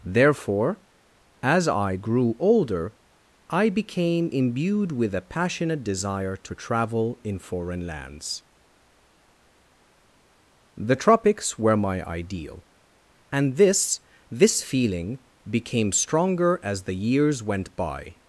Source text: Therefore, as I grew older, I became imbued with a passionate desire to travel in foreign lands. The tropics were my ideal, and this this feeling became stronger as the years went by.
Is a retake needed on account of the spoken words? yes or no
no